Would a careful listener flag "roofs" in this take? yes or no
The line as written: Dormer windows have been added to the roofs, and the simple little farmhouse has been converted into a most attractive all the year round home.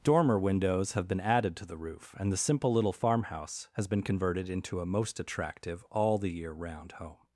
yes